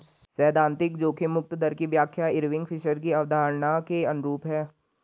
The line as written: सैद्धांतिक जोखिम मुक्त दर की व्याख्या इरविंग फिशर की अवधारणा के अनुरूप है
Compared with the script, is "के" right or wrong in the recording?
right